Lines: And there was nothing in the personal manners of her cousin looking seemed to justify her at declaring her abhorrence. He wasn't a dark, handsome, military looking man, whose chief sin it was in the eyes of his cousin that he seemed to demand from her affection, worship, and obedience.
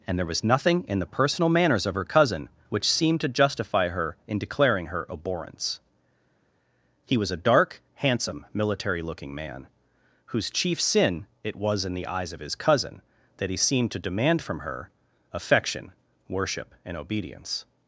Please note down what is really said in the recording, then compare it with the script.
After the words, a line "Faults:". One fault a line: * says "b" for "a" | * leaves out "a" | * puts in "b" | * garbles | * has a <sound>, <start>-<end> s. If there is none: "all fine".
And there was nothing in the personal manners of her cousin which seemed to justify her in declaring her abhorrence. He was a dark, handsome, military looking man, whose chief sin it was in the eyes of his cousin that he seemed to demand from her affection, worship, and obedience.
Faults:
* says "which" for "looking"
* says "in" for "at"
* says "was" for "wasn't"